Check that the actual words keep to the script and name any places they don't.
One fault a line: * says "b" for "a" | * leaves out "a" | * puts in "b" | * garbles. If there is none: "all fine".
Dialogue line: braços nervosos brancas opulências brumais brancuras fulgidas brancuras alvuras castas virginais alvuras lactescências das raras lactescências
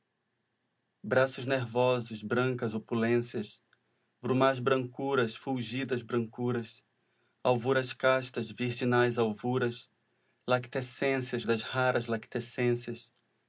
all fine